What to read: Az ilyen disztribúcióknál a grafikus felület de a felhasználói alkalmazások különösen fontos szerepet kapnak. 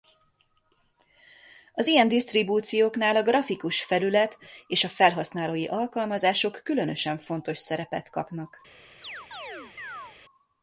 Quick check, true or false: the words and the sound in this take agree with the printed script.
false